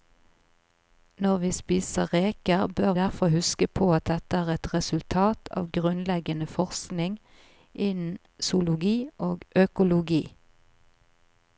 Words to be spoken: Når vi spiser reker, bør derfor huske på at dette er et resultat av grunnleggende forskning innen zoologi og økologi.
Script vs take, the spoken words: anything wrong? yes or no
no